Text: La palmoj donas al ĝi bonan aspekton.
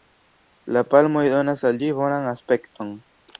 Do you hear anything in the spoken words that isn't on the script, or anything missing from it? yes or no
no